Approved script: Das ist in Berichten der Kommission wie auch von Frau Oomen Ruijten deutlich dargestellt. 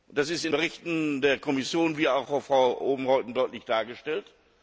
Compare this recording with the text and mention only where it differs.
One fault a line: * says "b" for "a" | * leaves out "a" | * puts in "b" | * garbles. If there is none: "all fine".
all fine